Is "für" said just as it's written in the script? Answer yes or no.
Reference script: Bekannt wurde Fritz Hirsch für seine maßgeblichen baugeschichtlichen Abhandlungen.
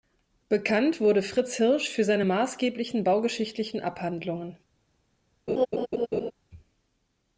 yes